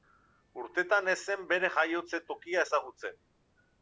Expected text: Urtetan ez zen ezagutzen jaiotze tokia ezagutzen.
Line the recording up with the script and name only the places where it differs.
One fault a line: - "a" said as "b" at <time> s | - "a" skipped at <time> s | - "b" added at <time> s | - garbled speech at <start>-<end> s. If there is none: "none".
- "ezagutzen" said as "bere" at 1.5 s